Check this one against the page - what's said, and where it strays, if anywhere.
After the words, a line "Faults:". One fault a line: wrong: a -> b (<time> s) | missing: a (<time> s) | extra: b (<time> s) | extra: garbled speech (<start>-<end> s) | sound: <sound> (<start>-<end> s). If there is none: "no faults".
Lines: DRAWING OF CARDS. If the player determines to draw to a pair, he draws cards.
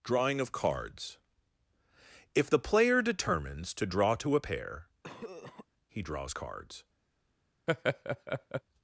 DRAWING OF CARDS. If the player determines to draw to a pair, he draws cards.
Faults:
sound: cough (5.0-5.7 s)
sound: laugh (7.7-8.6 s)